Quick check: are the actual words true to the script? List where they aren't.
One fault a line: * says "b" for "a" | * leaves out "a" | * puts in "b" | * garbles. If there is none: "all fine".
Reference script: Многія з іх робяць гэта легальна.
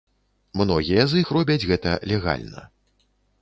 all fine